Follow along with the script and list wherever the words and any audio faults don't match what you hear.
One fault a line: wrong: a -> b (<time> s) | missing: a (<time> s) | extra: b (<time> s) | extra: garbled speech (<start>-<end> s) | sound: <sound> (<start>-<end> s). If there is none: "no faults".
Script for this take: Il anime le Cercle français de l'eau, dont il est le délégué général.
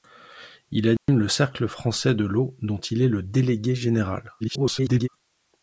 sound: dropout (1.0-1.1 s)
extra: garbled speech (4.4-5.1 s)